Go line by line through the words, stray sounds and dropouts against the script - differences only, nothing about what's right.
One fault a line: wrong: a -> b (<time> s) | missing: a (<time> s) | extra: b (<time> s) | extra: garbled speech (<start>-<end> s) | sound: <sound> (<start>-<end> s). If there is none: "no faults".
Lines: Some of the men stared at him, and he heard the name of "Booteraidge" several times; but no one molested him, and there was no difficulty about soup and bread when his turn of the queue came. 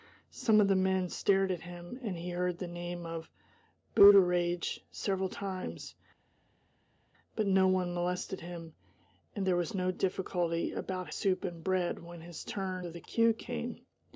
no faults